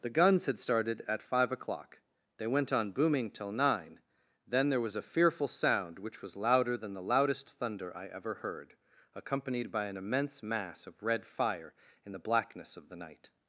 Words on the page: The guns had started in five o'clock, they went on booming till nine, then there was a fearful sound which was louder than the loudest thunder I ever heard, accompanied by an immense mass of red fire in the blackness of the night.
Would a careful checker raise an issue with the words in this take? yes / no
yes